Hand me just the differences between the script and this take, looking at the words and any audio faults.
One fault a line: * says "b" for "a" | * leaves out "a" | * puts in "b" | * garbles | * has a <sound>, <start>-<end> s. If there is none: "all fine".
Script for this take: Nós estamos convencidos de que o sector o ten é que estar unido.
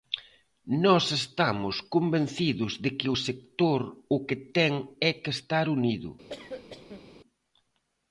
* puts in "que"
* has a cough, 6.3-7.1 s